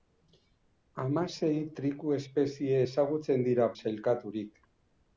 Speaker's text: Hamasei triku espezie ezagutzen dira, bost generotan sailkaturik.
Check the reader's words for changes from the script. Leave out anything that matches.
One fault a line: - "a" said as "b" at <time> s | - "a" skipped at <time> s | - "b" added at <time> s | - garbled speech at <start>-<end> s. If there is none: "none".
- "bost generotan" skipped at 3.7 s